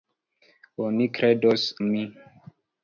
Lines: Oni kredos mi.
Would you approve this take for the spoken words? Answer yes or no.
yes